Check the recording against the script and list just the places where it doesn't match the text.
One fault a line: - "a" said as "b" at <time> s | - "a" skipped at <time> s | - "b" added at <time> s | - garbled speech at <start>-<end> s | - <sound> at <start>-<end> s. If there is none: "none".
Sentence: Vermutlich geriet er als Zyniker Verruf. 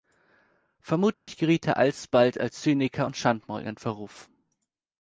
- dropout at 1.1-1.3 s
- "alsbald" added at 1.8 s
- "und Schandmaul in" added at 3.0 s